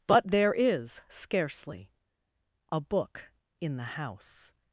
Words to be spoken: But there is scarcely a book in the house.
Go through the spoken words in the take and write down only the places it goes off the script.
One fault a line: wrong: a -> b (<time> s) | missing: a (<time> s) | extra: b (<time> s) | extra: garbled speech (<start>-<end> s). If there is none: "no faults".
no faults